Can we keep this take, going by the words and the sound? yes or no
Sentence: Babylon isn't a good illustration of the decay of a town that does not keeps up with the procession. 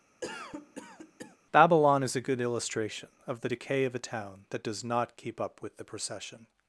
no